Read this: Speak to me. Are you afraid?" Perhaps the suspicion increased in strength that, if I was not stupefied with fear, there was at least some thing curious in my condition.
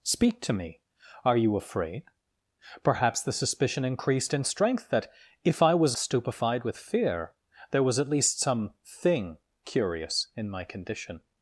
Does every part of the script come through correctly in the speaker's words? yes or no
no